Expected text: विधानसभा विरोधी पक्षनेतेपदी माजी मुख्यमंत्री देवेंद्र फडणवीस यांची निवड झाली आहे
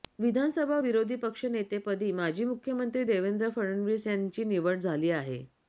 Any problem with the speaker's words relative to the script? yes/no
no